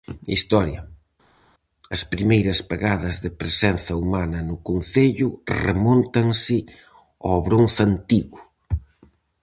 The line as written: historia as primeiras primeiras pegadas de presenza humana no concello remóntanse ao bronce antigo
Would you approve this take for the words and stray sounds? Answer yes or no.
no